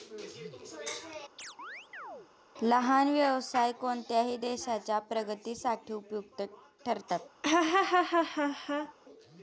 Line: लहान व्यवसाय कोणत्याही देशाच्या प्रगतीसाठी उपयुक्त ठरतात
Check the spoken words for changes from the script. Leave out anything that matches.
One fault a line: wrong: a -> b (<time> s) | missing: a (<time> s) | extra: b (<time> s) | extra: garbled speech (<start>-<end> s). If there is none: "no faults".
no faults